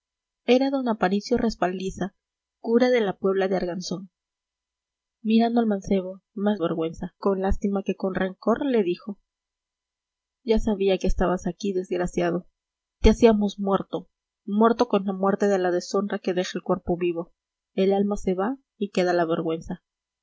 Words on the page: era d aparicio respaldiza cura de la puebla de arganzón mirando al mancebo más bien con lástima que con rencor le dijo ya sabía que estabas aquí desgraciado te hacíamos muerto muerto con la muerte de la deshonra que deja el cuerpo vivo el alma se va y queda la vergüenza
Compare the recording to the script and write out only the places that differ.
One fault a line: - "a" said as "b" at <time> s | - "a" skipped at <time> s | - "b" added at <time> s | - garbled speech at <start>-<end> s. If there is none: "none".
- "bien" said as "vergüenza" at 6.6 s